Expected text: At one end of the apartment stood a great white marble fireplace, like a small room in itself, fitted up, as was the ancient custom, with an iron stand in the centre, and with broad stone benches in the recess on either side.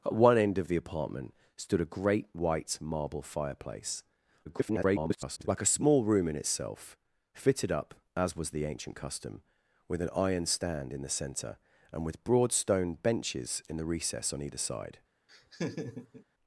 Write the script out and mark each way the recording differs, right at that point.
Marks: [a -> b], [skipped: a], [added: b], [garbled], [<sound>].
At one end of the apartment stood a great white marble fireplace, [garbled] like a small room in itself, fitted up, as was the ancient custom, with an iron stand in the centre, and with broad stone benches in the recess on either side. [laugh]